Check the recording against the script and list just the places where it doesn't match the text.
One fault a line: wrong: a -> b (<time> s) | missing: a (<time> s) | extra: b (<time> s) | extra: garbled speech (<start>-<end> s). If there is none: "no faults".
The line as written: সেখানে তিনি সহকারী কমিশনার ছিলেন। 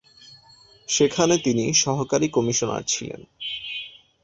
no faults